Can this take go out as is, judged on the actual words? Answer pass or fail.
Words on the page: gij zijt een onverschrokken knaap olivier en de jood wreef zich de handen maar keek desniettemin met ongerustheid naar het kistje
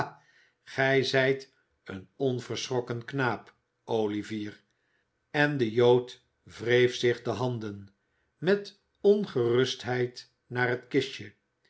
fail